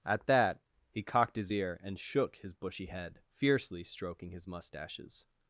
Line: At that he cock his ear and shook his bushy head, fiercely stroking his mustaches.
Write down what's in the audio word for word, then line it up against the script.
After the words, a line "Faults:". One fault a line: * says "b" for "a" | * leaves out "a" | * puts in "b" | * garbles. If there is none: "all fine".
At that he cocked his ear and shook his bushy head, fiercely stroking his mustaches.
Faults:
* says "cocked" for "cock"